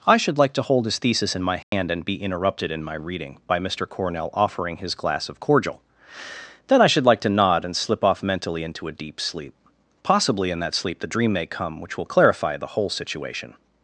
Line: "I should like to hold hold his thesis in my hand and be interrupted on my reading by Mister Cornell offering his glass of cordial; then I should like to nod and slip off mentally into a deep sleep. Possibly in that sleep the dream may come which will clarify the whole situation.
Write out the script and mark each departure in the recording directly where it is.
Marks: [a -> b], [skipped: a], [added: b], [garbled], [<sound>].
"I should like to hold [skipped: hold] his thesis in my hand [dropout] and be interrupted [on -> in] my reading by Mister Cornell offering his glass of cordial; then I should like to nod and slip off mentally into a deep sleep. Possibly in that sleep the dream may come which will clarify the whole situation.